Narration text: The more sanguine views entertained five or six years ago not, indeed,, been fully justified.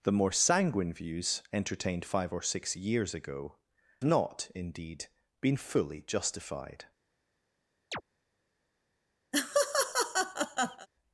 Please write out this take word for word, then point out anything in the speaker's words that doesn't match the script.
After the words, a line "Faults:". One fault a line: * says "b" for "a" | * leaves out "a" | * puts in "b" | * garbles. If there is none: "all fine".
The more sanguine views entertained five or six years ago not, indeed,, been fully justified.
Faults:
all fine